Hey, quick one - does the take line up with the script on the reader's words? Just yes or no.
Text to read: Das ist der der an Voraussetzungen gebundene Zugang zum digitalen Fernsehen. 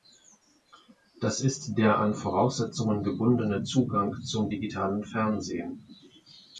no